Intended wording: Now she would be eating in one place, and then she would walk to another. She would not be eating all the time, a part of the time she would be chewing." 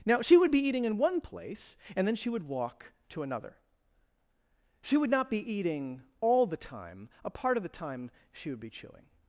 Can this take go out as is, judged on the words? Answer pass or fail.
pass